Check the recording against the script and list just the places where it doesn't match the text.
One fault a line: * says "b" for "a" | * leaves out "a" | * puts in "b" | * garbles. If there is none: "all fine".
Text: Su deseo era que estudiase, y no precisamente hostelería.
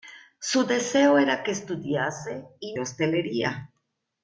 * leaves out "no precisamente"